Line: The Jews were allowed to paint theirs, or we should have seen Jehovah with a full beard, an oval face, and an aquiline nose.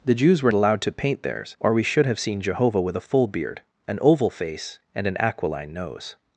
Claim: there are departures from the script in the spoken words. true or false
false